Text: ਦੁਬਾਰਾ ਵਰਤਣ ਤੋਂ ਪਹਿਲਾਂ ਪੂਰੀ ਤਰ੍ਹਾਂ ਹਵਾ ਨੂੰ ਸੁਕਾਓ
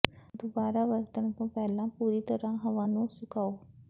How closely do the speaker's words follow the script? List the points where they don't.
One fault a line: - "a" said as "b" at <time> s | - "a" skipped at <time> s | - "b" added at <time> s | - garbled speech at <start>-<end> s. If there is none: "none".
none